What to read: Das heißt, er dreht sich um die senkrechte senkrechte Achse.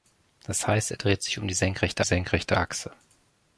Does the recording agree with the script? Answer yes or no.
yes